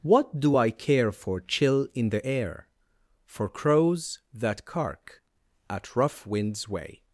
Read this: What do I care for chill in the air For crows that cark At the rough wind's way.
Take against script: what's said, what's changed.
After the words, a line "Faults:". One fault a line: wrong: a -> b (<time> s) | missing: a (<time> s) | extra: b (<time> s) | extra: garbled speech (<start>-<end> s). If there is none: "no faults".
What do I care for chill in the air For crows that cark At rough wind's way.
Faults:
missing: the (5.9 s)